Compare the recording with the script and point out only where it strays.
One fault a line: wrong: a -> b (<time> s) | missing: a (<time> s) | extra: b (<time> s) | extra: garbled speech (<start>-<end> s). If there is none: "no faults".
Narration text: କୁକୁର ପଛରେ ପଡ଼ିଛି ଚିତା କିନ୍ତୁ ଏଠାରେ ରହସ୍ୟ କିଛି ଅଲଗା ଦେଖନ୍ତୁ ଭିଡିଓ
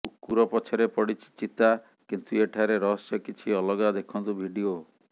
no faults